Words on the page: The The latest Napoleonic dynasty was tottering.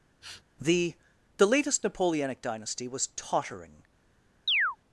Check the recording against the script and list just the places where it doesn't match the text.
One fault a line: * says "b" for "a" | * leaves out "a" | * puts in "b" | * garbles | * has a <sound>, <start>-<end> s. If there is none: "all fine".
* has a sniff, 0.2-0.4 s
* has a chirp, 4.5-4.8 s